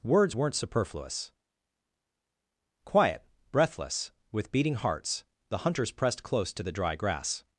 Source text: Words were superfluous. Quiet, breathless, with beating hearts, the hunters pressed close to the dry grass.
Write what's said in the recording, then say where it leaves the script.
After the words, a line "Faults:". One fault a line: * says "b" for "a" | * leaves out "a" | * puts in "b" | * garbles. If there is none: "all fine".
Words weren't superfluous. Quiet, breathless, with beating hearts, the hunters pressed close to the dry grass.
Faults:
* says "weren't" for "were"